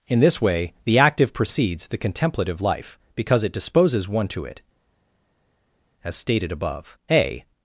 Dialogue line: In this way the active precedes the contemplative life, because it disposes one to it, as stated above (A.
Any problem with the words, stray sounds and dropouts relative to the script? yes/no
no